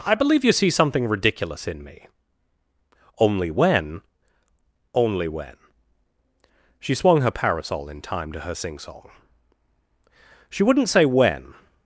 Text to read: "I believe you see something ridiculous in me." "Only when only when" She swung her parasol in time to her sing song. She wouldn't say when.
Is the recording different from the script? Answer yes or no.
no